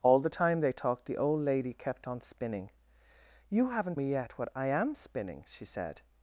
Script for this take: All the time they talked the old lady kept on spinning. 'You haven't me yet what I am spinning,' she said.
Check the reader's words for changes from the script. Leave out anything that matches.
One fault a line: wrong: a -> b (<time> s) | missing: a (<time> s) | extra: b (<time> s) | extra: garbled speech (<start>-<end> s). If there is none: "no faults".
no faults